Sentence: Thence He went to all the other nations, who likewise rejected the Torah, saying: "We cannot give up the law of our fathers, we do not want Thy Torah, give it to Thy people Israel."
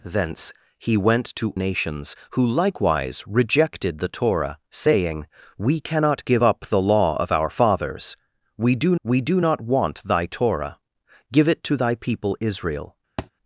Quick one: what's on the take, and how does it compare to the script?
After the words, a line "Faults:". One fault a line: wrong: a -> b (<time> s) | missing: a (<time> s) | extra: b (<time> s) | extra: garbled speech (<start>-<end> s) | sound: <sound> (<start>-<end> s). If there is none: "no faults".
Thence He went to nations, who likewise rejected the Torah, saying: "We cannot give up the law of our fathers, we do we do not want Thy Torah, give it to Thy people Israel."
Faults:
missing: all the other (1.6 s)
extra: we do (9.0 s)
sound: thud (13.2-13.3 s)